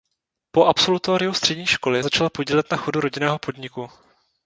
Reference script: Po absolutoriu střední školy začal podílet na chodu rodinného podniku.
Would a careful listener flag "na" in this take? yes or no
no